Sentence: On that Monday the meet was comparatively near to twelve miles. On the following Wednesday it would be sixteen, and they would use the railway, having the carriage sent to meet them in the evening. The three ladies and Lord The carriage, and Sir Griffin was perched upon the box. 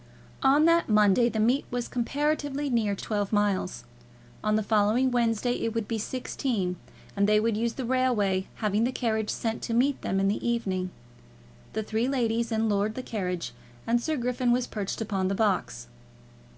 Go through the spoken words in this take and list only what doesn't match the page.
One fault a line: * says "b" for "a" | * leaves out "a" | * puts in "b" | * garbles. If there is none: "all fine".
all fine